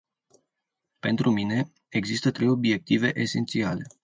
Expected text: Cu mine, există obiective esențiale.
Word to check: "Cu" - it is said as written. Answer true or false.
false